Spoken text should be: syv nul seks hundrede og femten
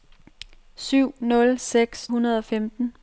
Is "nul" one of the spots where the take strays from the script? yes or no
no